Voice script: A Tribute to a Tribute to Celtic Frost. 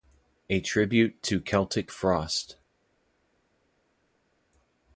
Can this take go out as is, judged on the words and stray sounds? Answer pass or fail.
fail